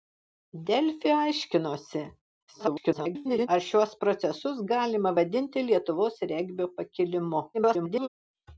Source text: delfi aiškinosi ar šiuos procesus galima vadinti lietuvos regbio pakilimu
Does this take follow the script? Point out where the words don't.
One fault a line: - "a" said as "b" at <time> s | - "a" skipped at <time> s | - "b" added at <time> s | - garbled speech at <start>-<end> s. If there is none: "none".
- garbled speech at 2.5-3.5 s
- garbled speech at 7.5-8.1 s